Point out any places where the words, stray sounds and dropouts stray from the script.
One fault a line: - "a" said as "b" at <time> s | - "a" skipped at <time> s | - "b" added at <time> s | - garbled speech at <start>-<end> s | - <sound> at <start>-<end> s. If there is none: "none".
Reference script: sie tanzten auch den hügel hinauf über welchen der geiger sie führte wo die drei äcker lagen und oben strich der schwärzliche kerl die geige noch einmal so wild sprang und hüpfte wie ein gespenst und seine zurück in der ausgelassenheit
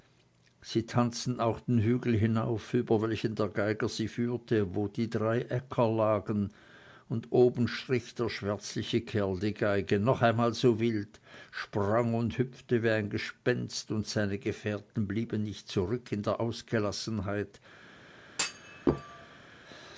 - "gefährten blieben nicht" added at 14.4 s
- thud at 18.3-19.5 s